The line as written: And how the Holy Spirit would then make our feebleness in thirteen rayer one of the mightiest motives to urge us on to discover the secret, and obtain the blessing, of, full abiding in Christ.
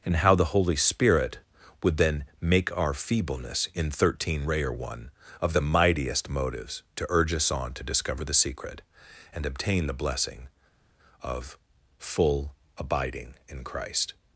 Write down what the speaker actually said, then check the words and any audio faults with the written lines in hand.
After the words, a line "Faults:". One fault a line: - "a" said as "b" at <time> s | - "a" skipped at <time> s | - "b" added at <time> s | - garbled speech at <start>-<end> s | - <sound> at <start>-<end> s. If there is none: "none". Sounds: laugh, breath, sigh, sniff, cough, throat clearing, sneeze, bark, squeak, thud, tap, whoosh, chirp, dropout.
And how the Holy Spirit would then make our feebleness in thirteen rayer one of the mightiest motives to urge us on to discover the secret, and obtain the blessing, of, full abiding in Christ.
Faults:
none